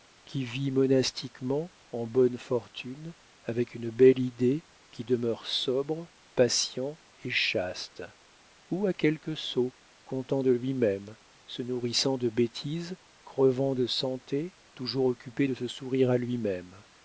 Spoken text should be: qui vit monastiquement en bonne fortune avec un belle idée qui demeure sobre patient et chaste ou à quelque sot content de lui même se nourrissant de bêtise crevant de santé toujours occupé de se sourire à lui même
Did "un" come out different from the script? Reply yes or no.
yes